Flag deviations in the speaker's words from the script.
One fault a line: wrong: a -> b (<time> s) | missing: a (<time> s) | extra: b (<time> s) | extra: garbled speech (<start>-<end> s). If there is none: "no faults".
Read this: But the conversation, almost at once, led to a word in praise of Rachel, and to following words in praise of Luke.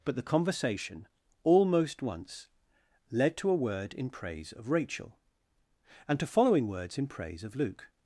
missing: at (2.0 s)